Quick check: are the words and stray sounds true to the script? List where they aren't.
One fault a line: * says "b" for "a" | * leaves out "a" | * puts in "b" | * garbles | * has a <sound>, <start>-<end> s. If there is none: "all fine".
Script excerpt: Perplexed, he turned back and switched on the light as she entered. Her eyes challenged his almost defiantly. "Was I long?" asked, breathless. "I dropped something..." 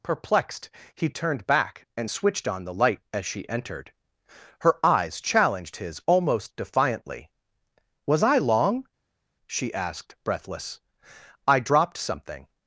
* puts in "she"